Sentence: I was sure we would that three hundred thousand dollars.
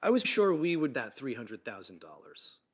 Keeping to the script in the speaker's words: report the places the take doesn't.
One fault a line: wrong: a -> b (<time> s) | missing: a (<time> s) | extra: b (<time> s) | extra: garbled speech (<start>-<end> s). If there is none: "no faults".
no faults